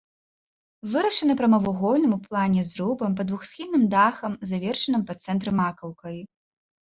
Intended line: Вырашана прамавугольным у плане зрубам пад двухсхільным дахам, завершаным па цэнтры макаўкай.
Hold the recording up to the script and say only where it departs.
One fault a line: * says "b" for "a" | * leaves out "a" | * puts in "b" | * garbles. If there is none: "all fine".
all fine